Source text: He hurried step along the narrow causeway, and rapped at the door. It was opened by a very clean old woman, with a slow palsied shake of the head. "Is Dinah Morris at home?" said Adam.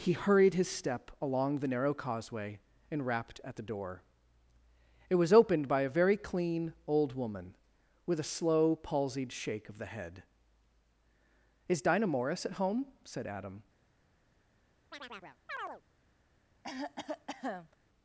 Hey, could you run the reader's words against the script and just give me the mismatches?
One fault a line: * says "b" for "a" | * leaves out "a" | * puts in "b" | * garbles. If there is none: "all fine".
* puts in "his"